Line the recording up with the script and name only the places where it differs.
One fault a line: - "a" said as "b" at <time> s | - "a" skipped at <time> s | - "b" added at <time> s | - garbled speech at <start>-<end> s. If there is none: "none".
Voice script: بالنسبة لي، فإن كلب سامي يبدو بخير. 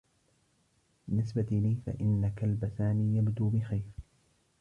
none